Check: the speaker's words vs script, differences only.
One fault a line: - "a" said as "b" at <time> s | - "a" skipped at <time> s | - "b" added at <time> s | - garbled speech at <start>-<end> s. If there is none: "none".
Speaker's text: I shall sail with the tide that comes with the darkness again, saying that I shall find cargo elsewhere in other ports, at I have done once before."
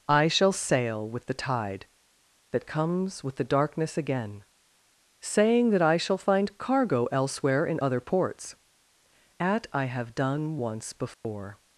none